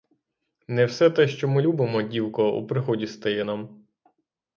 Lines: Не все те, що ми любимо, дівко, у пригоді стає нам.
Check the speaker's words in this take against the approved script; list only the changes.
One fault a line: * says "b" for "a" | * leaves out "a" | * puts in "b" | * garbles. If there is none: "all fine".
all fine